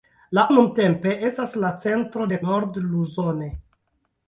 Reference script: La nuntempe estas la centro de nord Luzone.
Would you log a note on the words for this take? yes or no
no